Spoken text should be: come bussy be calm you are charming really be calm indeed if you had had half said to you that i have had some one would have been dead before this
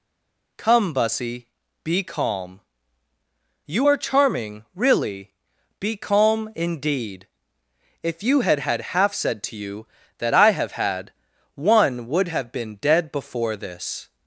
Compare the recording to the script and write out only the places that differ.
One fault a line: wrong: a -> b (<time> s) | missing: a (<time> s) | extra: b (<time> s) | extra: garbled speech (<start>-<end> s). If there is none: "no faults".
missing: some (11.1 s)